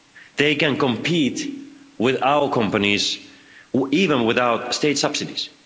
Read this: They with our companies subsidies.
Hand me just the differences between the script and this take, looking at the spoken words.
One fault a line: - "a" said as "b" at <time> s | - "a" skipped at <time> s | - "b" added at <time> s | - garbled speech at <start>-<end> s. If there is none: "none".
- "can compete" added at 0.6 s
- "even without state" added at 3.9 s